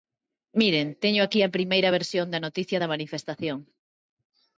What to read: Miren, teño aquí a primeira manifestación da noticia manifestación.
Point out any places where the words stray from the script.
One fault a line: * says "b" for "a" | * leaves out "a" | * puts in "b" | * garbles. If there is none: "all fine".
* says "versión" for "manifestación"
* puts in "da"